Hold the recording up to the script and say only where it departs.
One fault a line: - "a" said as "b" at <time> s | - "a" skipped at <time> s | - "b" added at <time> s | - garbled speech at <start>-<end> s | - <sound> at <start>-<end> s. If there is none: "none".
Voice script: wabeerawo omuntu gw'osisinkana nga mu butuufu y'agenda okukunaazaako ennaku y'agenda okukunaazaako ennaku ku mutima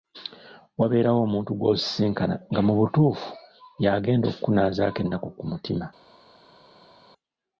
- "y'agenda okukunaazaako ennaku" skipped at 5.3 s